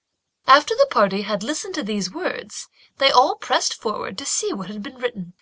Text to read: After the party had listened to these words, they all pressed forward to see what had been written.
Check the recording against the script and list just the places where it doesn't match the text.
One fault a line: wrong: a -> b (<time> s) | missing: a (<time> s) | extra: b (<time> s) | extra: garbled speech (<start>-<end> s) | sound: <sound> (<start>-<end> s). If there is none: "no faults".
no faults